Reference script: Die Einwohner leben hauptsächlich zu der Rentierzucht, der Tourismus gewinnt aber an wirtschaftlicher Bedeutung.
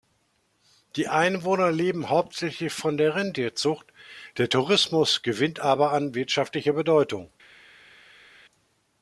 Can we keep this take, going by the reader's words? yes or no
no